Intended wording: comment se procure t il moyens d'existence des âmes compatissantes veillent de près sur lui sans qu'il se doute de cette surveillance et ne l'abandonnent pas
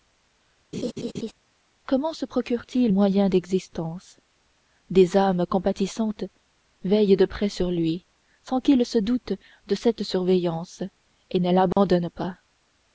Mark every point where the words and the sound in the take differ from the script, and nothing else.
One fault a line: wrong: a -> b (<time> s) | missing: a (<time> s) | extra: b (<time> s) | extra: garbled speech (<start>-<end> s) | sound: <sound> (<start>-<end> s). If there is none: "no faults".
sound: laugh (0.7-1.3 s)
sound: dropout (11.7-11.8 s)